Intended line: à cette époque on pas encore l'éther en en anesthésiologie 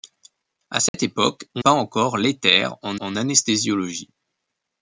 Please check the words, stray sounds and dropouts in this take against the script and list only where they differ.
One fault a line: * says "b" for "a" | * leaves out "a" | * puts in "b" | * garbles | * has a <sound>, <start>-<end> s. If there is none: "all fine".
* has a dropout, 0.9-0.9 s